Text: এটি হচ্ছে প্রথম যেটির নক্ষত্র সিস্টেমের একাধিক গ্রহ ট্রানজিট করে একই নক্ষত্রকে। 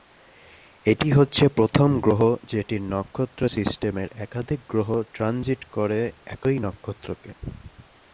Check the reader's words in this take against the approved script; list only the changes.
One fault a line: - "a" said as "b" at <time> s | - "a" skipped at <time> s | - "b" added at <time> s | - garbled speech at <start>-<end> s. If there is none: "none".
- "গ্রহ" added at 2.0 s